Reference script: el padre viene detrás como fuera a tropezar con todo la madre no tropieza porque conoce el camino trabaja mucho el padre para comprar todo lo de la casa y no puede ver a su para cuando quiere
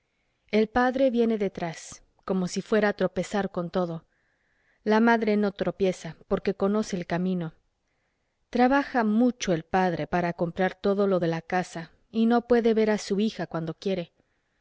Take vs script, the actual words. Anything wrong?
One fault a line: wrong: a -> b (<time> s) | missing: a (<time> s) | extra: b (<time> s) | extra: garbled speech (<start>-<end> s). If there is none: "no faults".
extra: si (2.5 s)
wrong: para -> hija (13.2 s)